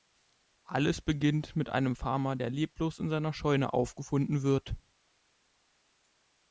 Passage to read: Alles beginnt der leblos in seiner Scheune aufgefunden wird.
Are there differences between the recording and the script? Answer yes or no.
yes